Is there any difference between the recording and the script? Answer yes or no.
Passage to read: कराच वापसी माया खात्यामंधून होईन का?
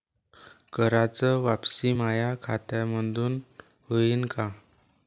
no